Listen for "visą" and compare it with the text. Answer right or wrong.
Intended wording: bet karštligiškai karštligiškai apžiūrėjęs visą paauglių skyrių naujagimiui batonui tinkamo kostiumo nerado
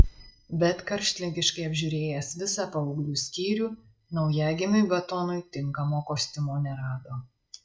right